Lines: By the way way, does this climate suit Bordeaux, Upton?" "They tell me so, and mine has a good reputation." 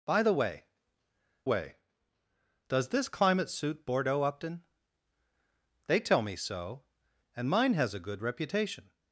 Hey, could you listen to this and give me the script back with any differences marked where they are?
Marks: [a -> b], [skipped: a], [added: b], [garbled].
By the way way, does this climate suit Bordeaux, Upton?" "They tell me so, and mine has a good reputation."